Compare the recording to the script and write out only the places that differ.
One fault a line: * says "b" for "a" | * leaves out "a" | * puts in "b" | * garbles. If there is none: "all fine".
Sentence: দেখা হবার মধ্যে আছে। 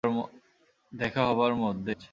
all fine